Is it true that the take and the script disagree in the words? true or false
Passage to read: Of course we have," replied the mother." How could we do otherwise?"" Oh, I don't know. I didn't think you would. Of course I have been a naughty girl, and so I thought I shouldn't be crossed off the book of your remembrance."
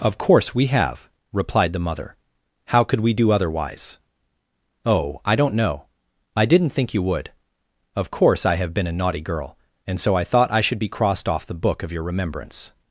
true